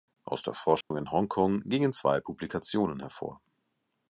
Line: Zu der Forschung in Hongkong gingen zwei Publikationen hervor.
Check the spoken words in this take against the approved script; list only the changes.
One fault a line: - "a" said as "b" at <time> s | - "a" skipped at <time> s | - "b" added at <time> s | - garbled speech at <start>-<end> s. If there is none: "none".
- "Zu" said as "Aus" at 0.2 s